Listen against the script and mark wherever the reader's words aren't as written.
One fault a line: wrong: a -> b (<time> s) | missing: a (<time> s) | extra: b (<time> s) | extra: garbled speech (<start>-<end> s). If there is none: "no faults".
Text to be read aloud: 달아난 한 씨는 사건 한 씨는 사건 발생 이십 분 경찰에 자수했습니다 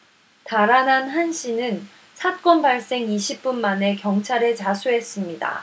missing: 한 씨는 사건 (2.6 s)
extra: 만에 (3.6 s)